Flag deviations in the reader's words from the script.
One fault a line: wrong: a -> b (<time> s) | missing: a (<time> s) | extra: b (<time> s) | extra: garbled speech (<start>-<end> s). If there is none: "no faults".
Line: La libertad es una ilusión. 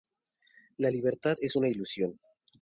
no faults